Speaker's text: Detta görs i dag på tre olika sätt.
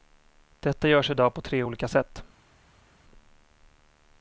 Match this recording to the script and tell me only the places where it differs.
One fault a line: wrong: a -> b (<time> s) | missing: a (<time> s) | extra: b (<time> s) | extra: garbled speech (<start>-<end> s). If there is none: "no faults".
no faults